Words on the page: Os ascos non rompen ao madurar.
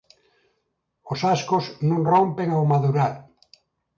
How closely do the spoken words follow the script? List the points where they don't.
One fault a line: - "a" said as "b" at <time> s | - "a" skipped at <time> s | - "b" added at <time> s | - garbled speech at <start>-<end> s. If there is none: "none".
none